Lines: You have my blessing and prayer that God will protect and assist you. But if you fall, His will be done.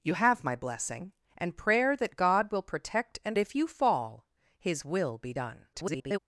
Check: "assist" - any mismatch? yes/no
yes